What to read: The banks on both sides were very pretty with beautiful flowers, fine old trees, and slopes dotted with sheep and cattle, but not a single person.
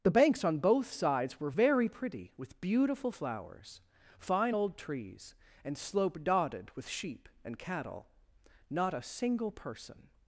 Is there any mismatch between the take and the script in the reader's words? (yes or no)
yes